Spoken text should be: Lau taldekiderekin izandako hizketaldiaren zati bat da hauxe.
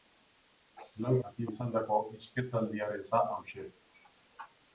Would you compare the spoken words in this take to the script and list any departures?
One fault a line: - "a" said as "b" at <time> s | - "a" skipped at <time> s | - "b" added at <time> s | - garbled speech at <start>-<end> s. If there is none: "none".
- "taldekiderekin" said as "zati" at 1.2 s
- "zati bat" skipped at 3.1 s